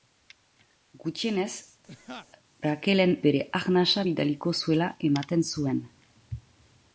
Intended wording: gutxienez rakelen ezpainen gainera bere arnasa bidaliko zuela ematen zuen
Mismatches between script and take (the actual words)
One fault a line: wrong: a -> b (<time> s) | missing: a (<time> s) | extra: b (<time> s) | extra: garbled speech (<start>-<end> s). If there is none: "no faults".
missing: ezpainen gainera (3.1 s)